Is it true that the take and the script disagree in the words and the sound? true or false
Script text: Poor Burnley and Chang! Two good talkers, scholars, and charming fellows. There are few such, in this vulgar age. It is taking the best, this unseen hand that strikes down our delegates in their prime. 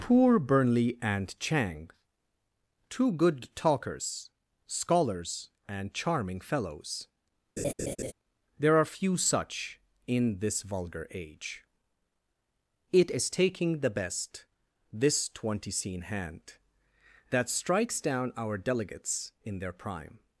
true